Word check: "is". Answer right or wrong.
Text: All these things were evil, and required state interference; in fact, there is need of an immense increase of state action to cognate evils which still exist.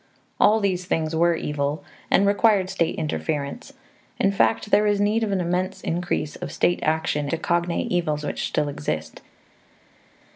right